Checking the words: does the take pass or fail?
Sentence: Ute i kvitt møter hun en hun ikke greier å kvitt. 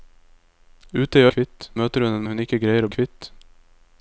pass